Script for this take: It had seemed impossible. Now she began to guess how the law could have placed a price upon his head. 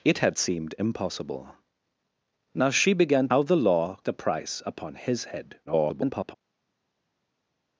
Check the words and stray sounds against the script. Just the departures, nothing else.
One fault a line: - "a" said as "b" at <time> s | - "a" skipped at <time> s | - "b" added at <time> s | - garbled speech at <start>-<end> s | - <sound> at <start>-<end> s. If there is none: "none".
- "to guess" skipped at 3.3 s
- "could have placed" skipped at 4.0 s
- garbled speech at 5.7-6.3 s